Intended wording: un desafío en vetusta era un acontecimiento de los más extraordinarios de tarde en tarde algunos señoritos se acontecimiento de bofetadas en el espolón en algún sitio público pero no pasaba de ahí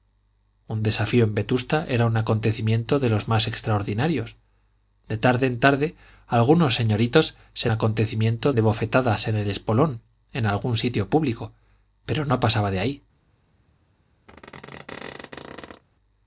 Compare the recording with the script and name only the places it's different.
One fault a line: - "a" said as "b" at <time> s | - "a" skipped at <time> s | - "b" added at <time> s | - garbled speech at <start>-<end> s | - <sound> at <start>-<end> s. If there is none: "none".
- squeak at 14.3-15.8 s